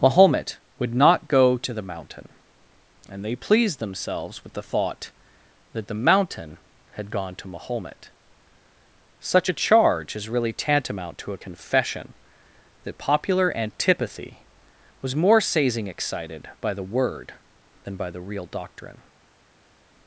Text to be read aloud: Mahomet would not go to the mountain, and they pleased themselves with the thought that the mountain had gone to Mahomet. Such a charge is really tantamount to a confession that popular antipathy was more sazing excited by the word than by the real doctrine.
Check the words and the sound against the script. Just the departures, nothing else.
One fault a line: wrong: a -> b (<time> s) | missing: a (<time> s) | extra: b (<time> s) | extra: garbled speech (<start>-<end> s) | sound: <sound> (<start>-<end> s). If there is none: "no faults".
no faults